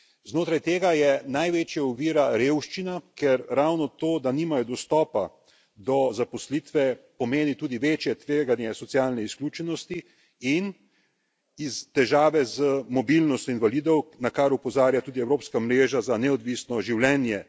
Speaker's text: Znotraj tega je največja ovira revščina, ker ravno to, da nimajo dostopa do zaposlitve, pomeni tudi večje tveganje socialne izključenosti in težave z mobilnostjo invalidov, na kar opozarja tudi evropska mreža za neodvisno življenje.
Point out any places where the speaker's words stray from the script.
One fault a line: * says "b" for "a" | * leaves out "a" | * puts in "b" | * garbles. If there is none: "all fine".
all fine